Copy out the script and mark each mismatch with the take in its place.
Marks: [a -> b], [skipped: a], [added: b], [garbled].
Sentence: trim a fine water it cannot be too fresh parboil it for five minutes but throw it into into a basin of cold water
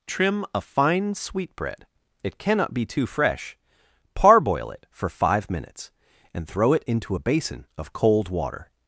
trim a fine [water -> sweetbread] it cannot be too fresh parboil it for five minutes [but -> and] throw it into [skipped: into] a basin of cold water